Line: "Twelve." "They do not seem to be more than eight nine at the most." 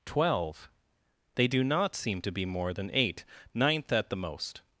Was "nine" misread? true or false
true